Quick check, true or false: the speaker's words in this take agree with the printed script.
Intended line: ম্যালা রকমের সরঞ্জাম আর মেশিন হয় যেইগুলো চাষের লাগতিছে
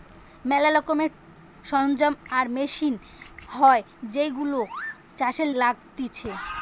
true